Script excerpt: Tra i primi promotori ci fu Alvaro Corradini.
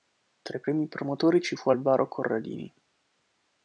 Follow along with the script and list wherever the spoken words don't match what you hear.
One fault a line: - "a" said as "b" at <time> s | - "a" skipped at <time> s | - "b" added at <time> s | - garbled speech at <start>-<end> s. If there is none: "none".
none